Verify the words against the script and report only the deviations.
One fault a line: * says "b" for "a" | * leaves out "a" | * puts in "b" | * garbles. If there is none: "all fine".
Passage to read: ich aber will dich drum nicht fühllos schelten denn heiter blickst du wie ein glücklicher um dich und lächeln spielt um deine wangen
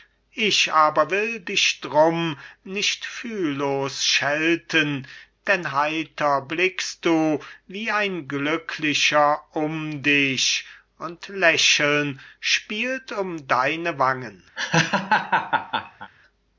all fine